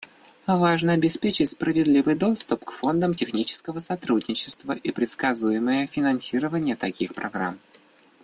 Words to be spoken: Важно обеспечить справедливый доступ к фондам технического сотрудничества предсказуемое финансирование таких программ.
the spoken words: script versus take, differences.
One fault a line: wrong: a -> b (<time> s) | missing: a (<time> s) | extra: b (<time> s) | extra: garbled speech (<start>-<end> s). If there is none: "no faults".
extra: и (4.7 s)